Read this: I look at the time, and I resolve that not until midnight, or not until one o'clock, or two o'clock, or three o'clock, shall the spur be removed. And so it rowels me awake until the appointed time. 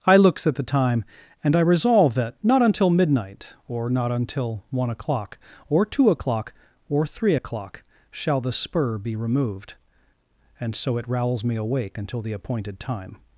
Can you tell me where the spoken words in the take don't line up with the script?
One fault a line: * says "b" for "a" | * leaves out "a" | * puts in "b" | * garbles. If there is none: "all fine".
* says "looks" for "look"